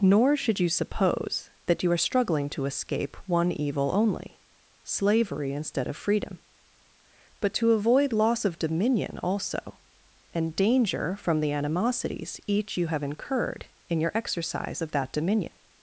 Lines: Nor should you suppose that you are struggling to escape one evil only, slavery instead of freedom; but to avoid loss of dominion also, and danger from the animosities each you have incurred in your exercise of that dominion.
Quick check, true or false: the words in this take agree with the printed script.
true